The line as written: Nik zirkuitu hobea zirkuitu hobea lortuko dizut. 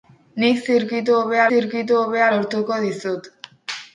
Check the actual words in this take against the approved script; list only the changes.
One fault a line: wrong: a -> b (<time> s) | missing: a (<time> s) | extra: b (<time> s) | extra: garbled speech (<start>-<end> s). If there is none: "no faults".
no faults